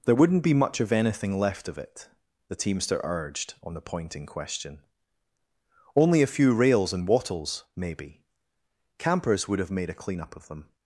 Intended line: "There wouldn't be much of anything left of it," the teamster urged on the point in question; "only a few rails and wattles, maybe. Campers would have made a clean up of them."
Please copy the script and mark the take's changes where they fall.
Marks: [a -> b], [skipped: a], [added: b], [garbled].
"There wouldn't be much of anything left of it," the teamster urged on the point in question; "only a few rails and wattles, maybe. Campers would have made a clean up of them."